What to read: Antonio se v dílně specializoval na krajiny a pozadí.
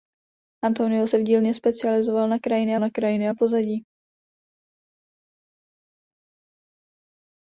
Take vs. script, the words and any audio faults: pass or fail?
fail